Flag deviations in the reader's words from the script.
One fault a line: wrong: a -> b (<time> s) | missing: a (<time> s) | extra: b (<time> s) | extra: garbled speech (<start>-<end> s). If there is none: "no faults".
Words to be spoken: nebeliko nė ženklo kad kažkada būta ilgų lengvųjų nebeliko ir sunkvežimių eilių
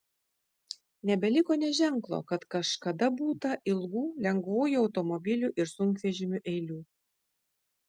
wrong: nebeliko -> automobilių (4.9 s)